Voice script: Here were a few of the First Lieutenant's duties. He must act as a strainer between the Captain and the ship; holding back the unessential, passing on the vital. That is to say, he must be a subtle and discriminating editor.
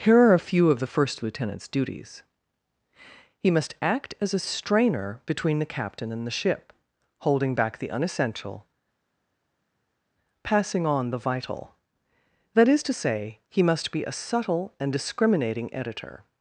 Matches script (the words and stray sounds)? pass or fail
fail